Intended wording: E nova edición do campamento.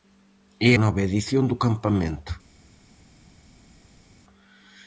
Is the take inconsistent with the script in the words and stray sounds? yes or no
no